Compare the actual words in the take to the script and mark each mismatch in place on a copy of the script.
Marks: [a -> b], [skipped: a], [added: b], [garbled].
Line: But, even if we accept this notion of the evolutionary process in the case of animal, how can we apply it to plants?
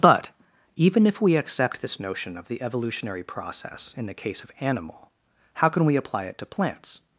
But, even if we accept this notion of the evolutionary process in the case of animal, how can we apply it to plants?